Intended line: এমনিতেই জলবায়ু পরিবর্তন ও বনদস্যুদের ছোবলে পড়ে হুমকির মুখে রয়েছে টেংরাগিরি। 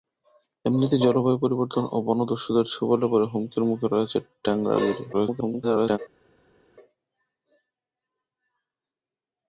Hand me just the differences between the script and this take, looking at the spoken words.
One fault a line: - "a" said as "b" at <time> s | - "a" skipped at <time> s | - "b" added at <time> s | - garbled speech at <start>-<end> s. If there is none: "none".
- garbled speech at 5.1-6.0 s